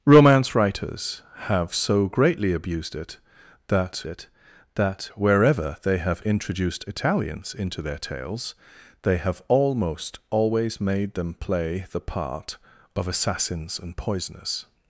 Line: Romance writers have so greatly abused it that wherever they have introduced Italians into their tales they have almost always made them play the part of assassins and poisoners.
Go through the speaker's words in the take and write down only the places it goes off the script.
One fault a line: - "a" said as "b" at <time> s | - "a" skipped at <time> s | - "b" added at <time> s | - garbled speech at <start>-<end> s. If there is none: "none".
- "it that" added at 4.1 s